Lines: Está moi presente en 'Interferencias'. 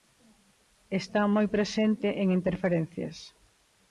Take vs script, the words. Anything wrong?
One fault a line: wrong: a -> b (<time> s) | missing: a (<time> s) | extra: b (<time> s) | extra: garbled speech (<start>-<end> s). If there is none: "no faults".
no faults